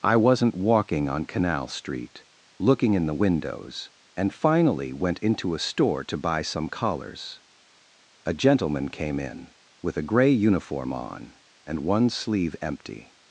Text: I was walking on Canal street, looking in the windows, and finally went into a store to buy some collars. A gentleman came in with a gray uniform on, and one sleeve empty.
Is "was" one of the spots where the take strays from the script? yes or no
yes